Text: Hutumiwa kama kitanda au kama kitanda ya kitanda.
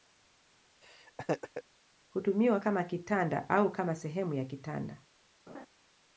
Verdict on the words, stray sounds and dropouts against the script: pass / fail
fail